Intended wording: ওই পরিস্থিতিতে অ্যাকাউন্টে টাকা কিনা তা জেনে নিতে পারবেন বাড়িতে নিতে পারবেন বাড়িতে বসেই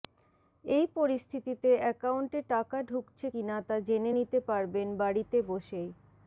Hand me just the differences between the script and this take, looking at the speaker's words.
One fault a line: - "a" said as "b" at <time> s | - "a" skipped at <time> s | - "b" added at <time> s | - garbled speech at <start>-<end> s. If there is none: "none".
- "ওই" said as "এই" at 0.7 s
- "ঢুকছে" added at 2.8 s
- "নিতে পারবেন বাড়িতে" skipped at 5.4 s